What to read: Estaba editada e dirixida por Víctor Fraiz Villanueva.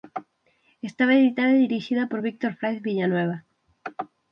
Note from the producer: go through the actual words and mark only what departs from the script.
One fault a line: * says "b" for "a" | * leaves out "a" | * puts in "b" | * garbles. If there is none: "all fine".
all fine